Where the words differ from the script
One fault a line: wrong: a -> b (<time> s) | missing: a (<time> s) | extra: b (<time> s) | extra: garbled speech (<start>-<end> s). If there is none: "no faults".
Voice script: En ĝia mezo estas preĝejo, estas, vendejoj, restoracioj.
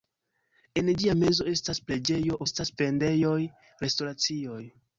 no faults